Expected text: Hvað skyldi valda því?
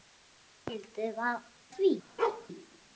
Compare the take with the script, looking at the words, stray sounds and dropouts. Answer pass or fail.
fail